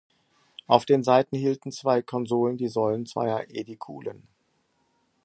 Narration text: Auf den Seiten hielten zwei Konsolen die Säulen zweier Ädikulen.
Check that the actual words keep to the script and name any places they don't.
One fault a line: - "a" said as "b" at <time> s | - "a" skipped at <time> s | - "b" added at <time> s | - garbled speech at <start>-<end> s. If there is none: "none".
none